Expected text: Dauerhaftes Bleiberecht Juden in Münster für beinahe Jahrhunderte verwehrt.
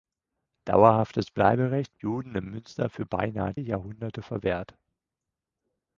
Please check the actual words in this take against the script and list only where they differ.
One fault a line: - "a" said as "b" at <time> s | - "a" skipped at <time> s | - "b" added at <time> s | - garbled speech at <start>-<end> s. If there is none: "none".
none